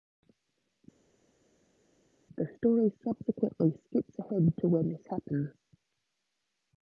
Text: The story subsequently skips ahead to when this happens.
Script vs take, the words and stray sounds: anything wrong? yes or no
no